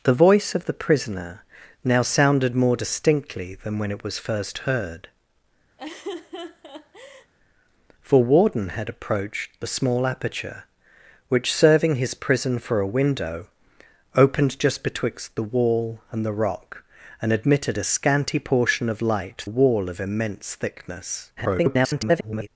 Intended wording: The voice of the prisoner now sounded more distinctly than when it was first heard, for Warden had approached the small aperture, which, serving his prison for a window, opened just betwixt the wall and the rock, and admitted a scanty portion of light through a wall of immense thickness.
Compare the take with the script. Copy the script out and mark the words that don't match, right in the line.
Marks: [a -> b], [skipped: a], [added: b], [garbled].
The voice of the prisoner now sounded more distinctly than when it was first heard, for Warden had approached the small aperture, which, serving his prison for a window, opened just betwixt the wall and the rock, and admitted a scanty portion of light [skipped: through] a wall of immense thickness. [garbled]